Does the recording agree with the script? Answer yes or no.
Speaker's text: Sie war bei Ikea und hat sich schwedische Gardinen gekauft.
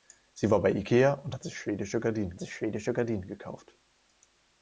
no